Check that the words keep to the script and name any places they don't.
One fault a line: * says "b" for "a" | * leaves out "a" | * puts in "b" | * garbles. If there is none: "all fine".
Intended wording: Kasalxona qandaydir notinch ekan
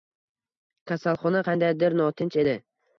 * says "edi" for "ekan"